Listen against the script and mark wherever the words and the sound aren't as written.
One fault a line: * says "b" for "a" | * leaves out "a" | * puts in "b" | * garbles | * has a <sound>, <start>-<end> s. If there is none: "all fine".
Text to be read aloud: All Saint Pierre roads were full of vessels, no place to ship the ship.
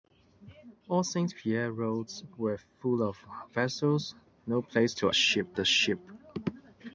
all fine